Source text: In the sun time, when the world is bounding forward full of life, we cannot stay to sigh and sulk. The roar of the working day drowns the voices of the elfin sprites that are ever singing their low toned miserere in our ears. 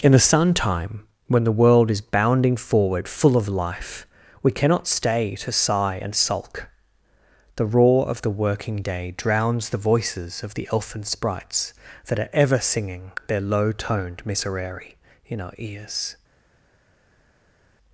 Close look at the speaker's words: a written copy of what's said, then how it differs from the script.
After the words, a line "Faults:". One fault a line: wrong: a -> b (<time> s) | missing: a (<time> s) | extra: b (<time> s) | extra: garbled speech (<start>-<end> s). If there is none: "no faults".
In the sun time, when the world is bounding forward full of life, we cannot stay to sigh and sulk. The roar of the working day drowns the voices of the elfin sprites that are ever singing their low toned miserere in our ears.
Faults:
no faults